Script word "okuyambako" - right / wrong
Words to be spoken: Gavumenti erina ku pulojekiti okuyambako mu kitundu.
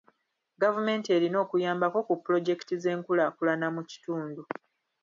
wrong